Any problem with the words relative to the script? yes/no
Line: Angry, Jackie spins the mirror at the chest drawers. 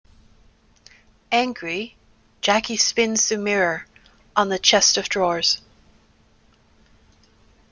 yes